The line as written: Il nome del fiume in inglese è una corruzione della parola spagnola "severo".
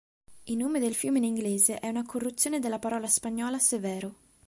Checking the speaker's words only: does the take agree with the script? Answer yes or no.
yes